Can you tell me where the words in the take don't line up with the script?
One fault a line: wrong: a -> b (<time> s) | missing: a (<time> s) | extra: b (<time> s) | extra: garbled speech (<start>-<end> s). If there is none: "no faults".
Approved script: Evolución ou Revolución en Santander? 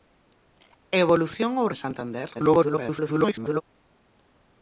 missing: Revolución (1.7 s)
extra: garbled speech (2.3-3.6 s)